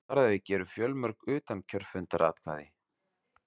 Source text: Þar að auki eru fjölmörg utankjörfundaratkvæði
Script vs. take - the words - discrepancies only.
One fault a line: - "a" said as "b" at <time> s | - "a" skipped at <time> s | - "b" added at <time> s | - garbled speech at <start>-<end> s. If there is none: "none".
none